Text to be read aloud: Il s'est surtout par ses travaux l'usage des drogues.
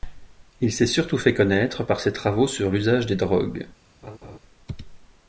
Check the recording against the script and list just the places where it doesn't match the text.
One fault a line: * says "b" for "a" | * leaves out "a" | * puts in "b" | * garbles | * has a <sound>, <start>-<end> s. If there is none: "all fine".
* puts in "fait connaître"
* puts in "sur"
* has a laugh, 4.0-4.4 s